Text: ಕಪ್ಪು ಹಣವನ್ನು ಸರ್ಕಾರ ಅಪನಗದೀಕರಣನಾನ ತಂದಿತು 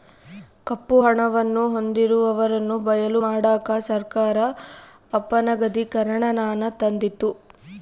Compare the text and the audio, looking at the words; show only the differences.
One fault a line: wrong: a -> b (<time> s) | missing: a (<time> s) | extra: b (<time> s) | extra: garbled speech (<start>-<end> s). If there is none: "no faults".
extra: ಹೊಂದಿರುವವರನ್ನು ಬಯಲು ಮಾಡಕ (1.7 s)